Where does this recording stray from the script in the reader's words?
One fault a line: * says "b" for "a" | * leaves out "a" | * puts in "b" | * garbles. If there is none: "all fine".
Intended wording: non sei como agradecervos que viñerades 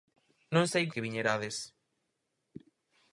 * leaves out "como agradecervos"